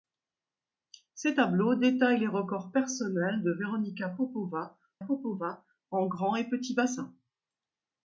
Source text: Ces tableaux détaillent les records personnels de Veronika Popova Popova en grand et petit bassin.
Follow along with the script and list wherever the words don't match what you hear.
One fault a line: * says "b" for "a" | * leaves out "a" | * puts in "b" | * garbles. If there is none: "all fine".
all fine